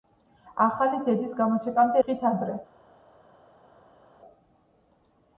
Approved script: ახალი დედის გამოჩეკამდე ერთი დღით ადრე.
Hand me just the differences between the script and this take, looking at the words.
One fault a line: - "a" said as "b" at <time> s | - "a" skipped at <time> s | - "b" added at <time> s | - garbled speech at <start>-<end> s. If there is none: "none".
- "ერთი" skipped at 2.0 s